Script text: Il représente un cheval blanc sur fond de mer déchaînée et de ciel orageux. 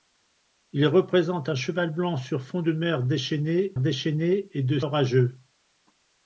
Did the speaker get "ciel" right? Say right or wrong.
wrong